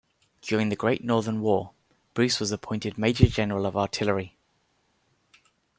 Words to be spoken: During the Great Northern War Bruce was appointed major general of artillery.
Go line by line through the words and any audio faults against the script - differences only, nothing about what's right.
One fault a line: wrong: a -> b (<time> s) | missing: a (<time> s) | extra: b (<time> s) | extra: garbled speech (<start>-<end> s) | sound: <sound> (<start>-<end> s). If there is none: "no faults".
no faults